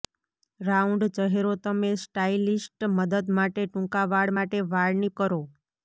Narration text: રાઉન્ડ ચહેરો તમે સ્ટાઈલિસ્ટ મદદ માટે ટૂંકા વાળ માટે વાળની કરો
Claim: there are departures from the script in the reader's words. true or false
false